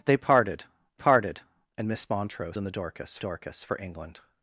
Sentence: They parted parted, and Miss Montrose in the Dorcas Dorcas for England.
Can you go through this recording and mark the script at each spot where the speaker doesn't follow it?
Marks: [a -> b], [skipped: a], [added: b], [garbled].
They parted parted, and Miss Montrose in the Dorcas Dorcas for England.